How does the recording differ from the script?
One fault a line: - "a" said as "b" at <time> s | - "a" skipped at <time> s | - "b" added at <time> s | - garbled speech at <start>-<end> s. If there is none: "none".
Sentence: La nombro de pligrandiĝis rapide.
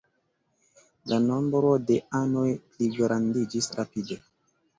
- "anoj" added at 2.2 s